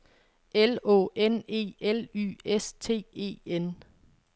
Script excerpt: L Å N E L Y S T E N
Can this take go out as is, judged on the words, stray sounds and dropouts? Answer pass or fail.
pass